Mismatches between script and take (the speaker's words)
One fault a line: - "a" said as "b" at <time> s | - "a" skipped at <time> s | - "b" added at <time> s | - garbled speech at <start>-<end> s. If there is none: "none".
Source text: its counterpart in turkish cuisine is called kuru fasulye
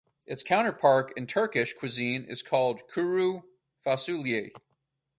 none